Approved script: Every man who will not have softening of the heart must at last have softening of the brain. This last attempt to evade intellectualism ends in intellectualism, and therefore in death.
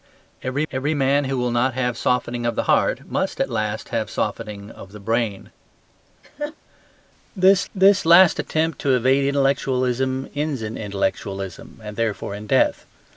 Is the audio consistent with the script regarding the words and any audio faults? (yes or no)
no